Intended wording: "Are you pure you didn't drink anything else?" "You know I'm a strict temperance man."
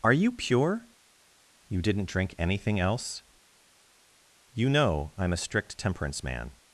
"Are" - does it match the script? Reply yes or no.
yes